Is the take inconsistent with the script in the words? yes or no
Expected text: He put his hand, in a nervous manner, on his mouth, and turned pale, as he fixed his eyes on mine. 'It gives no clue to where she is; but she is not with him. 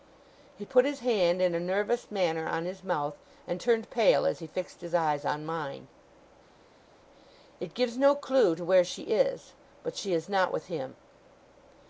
no